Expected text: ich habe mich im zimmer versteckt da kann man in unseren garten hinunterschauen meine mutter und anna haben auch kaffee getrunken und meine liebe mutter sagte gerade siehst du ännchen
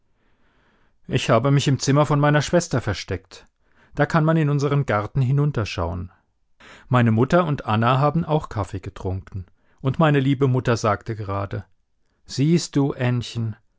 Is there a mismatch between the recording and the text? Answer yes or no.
yes